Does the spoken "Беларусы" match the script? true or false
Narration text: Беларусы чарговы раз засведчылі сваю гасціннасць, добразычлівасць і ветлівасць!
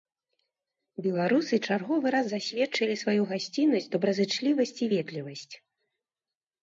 true